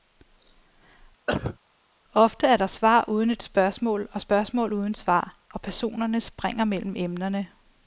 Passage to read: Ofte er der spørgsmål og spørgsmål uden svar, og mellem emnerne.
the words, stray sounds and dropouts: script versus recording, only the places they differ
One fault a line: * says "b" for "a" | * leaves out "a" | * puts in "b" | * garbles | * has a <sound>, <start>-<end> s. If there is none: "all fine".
* has a cough, 1.3-1.6 s
* puts in "svar uden et"
* puts in "personerne springer"